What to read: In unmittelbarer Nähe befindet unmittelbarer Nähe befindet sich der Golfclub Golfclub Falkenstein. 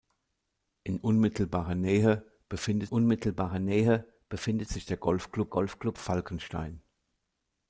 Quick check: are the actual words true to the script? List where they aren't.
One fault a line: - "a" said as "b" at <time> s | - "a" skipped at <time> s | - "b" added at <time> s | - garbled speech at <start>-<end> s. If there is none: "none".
none